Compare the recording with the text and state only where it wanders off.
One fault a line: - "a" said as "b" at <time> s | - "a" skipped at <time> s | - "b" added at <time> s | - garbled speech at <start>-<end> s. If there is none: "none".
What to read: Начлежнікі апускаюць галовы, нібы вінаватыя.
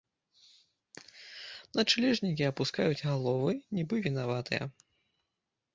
none